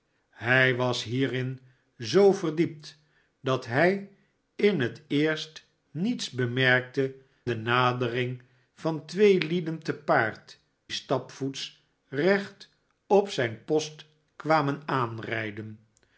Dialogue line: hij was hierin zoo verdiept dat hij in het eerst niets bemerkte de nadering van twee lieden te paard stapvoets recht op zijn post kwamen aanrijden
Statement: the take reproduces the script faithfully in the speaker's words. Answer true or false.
true